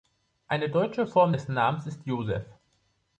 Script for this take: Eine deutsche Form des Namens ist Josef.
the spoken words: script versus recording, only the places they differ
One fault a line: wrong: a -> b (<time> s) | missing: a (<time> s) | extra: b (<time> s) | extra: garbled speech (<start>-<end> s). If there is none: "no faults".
no faults